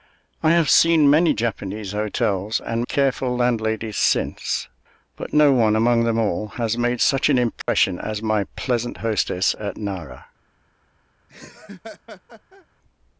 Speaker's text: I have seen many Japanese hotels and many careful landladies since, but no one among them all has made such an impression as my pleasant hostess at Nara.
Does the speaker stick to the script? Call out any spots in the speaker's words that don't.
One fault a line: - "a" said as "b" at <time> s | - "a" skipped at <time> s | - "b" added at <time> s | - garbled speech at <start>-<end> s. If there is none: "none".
- "many" skipped at 2.9 s